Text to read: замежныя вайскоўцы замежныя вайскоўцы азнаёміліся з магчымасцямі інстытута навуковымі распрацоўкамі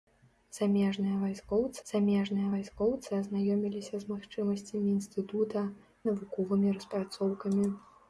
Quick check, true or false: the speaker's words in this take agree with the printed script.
true